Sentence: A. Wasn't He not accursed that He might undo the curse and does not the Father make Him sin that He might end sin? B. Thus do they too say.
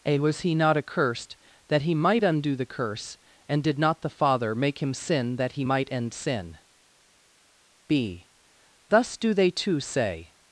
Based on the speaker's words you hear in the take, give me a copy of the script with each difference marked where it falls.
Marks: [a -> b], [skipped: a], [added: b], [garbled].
A. [Wasn't -> Was] He not accursed that He might undo the curse and [does -> did] not the Father make Him sin that He might end sin? B. Thus do they too say.